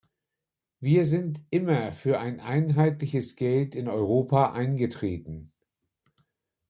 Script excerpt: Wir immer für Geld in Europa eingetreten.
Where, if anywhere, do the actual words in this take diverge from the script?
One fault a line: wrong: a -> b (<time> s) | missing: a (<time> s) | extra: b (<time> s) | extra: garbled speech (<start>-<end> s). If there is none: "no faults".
extra: sind (1.1 s)
extra: ein einheitliches (2.2 s)